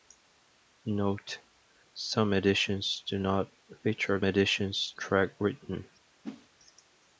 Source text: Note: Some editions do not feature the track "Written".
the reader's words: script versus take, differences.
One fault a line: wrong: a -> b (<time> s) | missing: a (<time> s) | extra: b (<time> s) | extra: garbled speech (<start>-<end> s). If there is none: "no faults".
wrong: the -> editions (4.2 s)